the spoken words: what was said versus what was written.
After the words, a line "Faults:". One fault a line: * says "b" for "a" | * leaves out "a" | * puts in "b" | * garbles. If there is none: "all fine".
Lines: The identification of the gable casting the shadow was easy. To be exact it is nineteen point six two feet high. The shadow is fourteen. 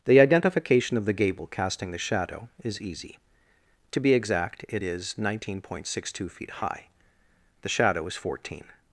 The identification of the gable casting the shadow is easy. To be exact it is nineteen point six two feet high. The shadow is fourteen.
Faults:
* says "is" for "was"